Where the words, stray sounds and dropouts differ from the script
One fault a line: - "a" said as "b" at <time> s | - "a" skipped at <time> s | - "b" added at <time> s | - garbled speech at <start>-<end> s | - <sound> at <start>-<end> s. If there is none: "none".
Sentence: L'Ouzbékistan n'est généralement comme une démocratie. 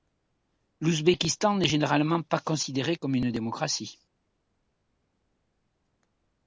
- "pas considéré" added at 2.2 s